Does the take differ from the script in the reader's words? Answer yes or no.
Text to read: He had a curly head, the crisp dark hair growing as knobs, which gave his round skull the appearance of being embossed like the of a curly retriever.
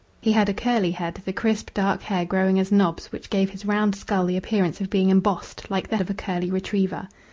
no